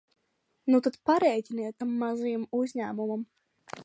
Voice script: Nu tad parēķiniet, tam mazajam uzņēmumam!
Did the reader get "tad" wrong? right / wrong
right